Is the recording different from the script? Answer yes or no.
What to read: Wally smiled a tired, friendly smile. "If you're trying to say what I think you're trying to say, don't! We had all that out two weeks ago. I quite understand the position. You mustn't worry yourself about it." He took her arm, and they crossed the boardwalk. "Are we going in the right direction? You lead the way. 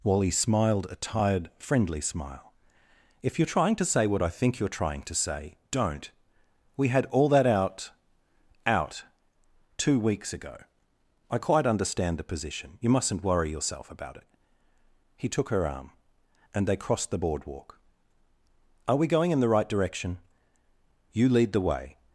yes